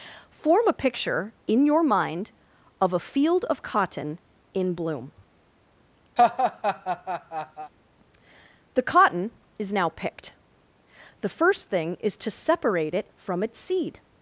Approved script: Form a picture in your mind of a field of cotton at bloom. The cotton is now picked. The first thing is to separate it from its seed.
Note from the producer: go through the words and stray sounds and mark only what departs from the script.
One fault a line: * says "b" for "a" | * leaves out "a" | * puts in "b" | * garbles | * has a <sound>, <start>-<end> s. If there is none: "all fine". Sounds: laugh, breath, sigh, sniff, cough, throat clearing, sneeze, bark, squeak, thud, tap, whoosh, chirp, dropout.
* says "in" for "at"
* has a laugh, 6.2-7.7 s